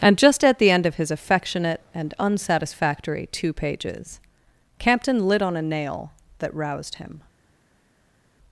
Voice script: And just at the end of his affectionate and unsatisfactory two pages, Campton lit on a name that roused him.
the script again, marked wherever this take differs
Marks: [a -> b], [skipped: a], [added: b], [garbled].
And just at the end of his affectionate and unsatisfactory two pages, Campton lit on a [name -> nail] that roused him.